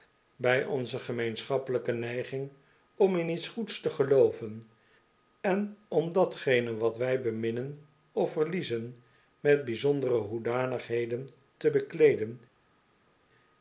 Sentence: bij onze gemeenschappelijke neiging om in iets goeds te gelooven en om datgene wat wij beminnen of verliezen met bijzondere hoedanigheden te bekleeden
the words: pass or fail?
pass